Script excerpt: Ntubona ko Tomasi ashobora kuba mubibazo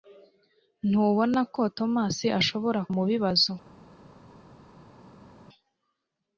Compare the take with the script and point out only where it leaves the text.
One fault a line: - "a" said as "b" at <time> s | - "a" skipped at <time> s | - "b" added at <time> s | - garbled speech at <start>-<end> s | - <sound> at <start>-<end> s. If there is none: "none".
- "kuba" skipped at 2.8 s